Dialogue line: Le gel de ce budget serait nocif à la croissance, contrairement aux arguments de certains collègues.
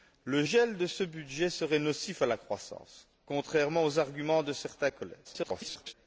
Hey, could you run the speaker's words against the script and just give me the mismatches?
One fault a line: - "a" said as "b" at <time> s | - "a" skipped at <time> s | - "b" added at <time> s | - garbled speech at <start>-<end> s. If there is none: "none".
- garbled speech at 5.2-5.9 s